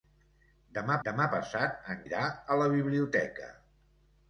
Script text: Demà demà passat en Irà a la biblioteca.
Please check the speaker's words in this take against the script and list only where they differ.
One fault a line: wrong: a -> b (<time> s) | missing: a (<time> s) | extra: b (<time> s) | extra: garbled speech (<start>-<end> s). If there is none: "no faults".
no faults